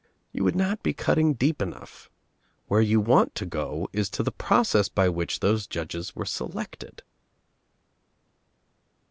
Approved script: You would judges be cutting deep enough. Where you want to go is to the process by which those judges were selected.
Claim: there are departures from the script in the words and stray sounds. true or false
true